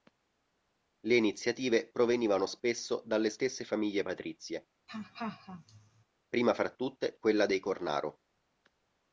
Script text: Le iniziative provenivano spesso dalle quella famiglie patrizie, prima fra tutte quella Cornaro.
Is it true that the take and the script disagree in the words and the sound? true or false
true